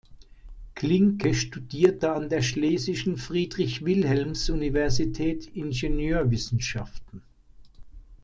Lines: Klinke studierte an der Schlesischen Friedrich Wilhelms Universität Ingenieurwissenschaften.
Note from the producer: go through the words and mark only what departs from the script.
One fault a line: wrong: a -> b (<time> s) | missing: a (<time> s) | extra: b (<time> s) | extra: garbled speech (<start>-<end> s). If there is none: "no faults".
no faults